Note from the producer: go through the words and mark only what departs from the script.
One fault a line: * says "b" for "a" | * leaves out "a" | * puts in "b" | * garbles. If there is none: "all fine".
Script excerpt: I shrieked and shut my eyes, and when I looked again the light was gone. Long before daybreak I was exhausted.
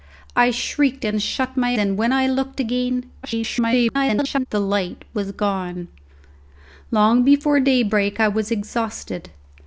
* leaves out "eyes"
* garbles